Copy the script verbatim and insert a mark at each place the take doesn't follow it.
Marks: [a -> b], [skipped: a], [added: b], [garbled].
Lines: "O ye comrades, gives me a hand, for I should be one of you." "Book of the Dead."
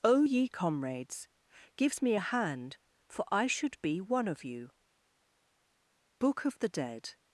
"O ye comrades, gives me a hand, for I should be one of you." "Book of the Dead."